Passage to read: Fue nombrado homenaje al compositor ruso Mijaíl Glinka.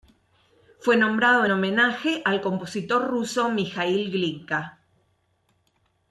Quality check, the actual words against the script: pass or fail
pass